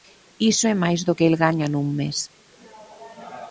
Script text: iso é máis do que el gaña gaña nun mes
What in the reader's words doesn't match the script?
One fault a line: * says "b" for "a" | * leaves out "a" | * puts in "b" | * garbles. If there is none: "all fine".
* leaves out "gaña"